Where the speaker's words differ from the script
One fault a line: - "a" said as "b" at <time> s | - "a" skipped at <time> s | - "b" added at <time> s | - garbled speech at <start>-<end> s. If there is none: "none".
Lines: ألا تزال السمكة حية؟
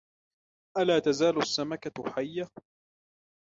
none